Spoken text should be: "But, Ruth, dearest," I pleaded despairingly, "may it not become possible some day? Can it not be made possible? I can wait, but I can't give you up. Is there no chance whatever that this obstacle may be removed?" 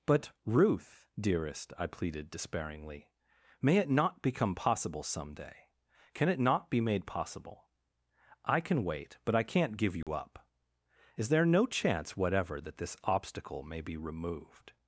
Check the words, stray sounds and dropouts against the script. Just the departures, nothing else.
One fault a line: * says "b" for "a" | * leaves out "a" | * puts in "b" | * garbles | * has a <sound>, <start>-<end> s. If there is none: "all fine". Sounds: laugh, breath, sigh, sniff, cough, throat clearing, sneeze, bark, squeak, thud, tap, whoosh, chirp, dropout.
* has a dropout, 10.0-10.1 s